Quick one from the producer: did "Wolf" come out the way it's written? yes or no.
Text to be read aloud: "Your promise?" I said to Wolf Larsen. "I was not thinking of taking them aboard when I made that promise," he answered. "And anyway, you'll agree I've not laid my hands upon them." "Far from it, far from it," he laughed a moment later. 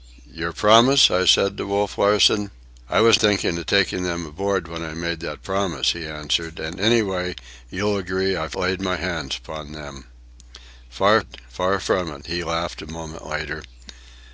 yes